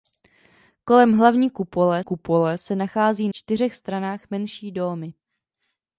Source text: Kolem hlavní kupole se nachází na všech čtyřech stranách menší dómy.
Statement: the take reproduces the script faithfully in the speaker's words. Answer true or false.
false